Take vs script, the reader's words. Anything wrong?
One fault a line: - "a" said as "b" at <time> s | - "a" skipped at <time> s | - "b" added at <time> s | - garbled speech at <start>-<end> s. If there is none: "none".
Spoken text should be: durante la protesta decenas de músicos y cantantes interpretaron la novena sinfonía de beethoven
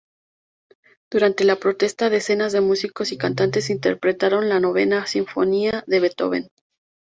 none